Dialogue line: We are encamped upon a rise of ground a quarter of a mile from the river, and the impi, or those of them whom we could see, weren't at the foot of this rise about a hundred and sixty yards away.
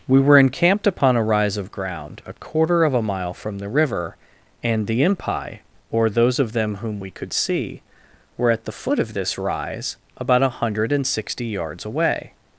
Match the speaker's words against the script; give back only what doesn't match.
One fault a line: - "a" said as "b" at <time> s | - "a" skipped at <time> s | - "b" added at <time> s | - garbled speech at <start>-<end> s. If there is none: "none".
- "are" said as "were" at 0.2 s
- "weren't" said as "were" at 8.4 s